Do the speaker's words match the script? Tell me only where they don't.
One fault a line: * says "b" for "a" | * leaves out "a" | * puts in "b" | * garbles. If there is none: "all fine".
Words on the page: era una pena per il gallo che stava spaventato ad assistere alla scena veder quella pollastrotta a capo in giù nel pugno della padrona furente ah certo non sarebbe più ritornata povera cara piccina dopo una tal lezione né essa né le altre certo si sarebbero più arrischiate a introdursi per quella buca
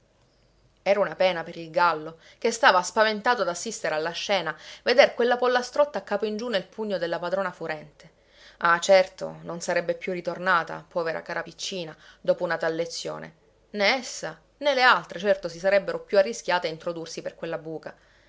all fine